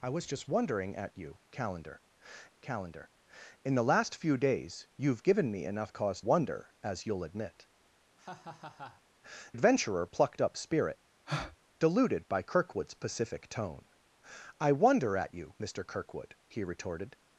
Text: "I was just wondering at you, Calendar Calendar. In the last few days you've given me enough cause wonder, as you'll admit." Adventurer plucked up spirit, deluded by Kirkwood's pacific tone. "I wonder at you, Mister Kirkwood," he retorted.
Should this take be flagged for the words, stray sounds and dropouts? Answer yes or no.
yes